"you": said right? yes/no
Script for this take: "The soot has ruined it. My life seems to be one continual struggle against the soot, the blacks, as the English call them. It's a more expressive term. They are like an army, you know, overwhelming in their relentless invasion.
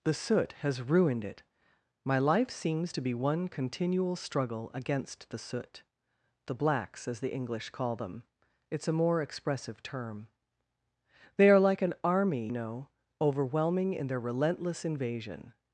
no